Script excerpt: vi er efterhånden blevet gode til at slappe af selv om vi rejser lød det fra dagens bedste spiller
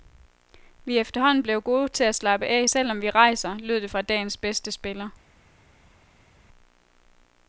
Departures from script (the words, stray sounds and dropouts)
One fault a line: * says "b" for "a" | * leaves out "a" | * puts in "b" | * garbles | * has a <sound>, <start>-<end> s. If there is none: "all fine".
all fine